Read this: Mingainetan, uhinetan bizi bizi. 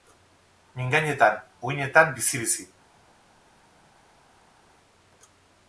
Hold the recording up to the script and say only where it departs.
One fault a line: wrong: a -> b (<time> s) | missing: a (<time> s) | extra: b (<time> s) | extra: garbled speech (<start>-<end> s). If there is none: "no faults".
no faults